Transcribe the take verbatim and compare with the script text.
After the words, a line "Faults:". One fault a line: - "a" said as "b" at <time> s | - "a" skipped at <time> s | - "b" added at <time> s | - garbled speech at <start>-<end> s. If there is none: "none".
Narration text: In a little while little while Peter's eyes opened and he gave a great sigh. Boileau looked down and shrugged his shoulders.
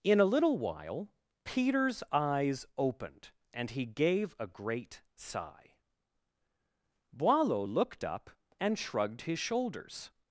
In a little while Peter's eyes opened and he gave a great sigh. Boileau looked up and shrugged his shoulders.
Faults:
- "little while" skipped at 1.1 s
- "down" said as "up" at 8.0 s